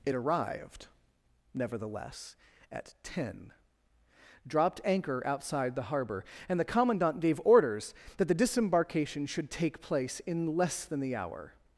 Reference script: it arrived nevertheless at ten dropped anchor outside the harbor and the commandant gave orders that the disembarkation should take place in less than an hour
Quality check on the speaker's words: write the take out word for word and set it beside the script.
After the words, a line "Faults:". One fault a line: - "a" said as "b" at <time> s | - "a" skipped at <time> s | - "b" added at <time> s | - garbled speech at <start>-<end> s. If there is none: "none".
it arrived nevertheless at ten dropped anchor outside the harbor and the commandant gave orders that the disembarkation should take place in less than the hour
Faults:
- "an" said as "the" at 11.0 s